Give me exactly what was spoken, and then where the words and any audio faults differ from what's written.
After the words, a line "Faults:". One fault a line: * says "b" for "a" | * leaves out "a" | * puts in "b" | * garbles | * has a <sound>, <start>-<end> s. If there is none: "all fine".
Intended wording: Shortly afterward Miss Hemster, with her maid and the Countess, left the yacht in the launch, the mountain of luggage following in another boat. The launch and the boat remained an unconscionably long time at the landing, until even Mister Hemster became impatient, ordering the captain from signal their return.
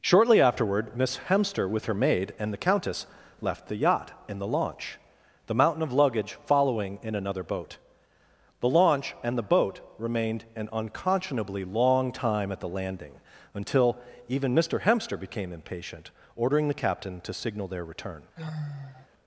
Shortly afterward Miss Hemster, with her maid and the Countess, left the yacht in the launch, the mountain of luggage following in another boat. The launch and the boat remained an unconscionably long time at the landing, until even Mister Hemster became impatient, ordering the captain to signal their return.
Faults:
* says "to" for "from"
* has a sigh, 18.4-19.1 s